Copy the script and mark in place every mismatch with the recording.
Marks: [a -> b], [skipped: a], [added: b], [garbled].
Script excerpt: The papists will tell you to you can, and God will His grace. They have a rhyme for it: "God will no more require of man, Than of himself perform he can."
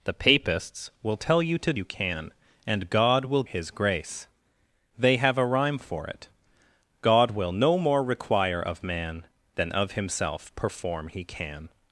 The papists will tell you to you can, and God will His grace. They have a rhyme for it: "God will no more require of man, Than of himself perform he can."